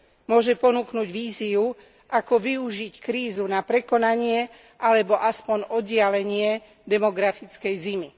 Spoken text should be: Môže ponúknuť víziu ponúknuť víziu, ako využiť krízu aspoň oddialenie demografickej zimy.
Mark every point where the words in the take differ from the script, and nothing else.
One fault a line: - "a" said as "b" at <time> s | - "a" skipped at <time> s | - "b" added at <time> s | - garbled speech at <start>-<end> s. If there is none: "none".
- "ponúknuť víziu" skipped at 1.8 s
- "na prekonanie alebo" added at 3.5 s